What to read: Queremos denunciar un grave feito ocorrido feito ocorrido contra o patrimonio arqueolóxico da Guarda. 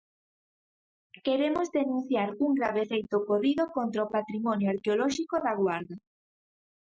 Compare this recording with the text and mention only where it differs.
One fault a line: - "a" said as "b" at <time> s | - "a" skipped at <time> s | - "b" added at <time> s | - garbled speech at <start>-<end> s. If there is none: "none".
- "feito ocorrido" skipped at 3.6 s